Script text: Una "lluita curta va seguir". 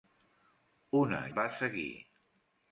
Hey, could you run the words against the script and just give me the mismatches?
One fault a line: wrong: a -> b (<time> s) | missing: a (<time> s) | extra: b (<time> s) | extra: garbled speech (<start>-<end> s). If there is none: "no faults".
missing: lluita curta (1.2 s)